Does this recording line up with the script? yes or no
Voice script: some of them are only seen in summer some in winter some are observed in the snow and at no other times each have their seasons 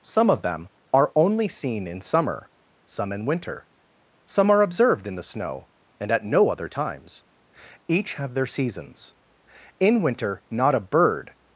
no